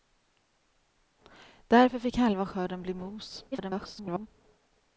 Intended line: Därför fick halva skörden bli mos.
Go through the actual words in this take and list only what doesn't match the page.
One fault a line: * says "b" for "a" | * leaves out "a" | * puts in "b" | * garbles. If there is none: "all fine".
* garbles